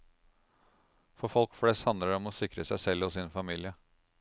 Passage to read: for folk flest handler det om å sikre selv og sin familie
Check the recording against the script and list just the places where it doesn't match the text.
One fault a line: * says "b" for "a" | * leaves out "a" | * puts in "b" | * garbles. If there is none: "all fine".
* puts in "seg"